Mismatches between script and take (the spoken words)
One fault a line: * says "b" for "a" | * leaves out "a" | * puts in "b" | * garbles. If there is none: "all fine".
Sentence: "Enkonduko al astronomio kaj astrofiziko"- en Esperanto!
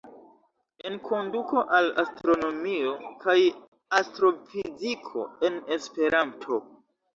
all fine